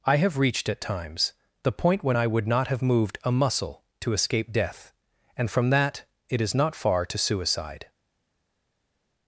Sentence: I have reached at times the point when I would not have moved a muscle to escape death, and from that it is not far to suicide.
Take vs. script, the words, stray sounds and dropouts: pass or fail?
pass